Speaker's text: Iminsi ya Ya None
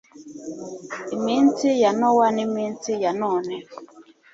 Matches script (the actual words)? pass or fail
fail